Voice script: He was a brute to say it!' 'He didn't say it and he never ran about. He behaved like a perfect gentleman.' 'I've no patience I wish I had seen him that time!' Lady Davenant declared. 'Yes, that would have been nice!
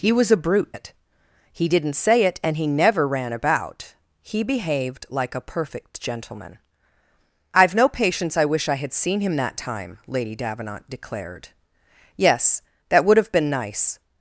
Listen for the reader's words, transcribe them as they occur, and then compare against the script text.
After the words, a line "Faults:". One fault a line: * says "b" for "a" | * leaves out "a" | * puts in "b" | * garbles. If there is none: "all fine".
He was a brute it!' 'He didn't say it and he never ran about. He behaved like a perfect gentleman.' 'I've no patience I wish I had seen him that time!' Lady Davenant declared. 'Yes, that would have been nice!
Faults:
* leaves out "to say"